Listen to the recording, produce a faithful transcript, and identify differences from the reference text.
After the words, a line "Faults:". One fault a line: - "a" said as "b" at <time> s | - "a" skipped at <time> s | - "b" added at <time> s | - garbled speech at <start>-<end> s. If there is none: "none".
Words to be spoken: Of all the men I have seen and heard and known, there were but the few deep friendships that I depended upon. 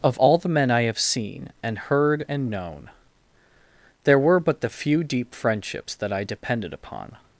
Of all the men I have seen and heard and known, there were but the few deep friendships that I depended upon.
Faults:
none